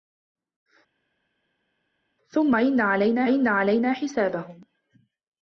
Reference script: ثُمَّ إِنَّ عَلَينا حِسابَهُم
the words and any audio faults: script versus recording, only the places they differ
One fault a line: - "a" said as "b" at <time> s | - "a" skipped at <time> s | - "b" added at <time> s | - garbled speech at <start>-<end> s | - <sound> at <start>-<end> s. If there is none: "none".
- "إِنَّ عَلَينا" added at 3.2 s